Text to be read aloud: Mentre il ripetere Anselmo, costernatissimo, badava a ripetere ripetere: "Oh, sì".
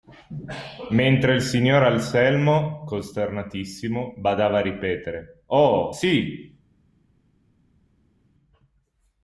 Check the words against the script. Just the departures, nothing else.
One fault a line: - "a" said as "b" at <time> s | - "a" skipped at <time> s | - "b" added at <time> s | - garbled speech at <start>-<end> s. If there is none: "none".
- "ripetere" said as "signor" at 1.4 s
- "ripetere" skipped at 5.4 s